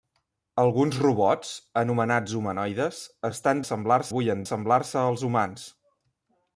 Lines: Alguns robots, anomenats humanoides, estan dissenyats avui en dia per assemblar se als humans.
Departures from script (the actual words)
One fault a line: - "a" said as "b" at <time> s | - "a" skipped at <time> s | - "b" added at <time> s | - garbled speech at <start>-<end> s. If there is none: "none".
- "dissenyats" said as "assemblar" at 3.6 s
- "dia per" skipped at 4.5 s